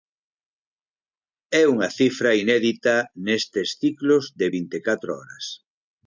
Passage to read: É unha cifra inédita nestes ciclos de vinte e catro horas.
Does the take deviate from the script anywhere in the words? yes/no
no